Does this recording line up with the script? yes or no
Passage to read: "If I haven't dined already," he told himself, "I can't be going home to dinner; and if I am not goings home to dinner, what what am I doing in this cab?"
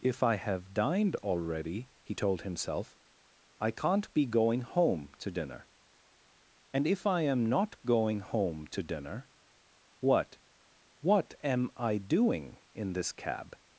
no